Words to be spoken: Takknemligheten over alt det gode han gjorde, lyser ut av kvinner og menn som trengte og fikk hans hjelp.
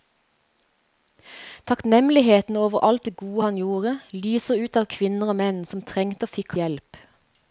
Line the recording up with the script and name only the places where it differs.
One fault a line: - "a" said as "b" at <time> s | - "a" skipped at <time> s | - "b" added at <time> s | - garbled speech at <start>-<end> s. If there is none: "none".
- "hans" skipped at 6.5 s